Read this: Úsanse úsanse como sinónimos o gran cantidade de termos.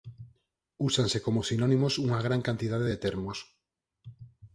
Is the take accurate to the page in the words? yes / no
no